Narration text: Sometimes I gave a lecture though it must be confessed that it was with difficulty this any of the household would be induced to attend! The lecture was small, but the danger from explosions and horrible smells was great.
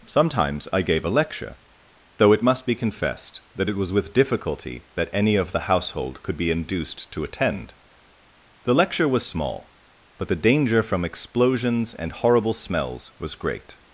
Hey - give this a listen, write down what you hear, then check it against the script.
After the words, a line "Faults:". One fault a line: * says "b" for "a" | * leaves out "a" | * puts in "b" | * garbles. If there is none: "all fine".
Sometimes I gave a lecture though it must be confessed that it was with difficulty that any of the household could be induced to attend! The lecture was small, but the danger from explosions and horrible smells was great.
Faults:
* says "that" for "this"
* says "could" for "would"